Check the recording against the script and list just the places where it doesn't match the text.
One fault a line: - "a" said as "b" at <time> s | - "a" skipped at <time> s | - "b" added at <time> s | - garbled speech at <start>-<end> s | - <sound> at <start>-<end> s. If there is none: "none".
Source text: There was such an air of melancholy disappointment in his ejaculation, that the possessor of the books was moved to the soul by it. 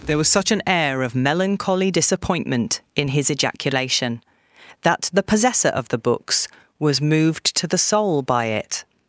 none